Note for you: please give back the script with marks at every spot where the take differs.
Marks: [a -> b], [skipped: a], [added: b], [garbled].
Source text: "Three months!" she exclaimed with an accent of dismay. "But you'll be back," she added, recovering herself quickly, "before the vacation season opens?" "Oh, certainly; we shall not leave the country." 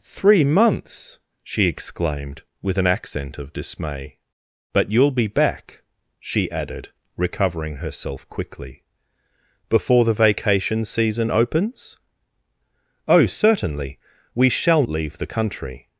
"Three months!" she exclaimed with an accent of dismay. "But you'll be back," she added, recovering herself quickly, "before the vacation season opens?" "Oh, certainly; we shall [skipped: not] leave the country."